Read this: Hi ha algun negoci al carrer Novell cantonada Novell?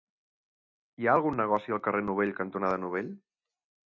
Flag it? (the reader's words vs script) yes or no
no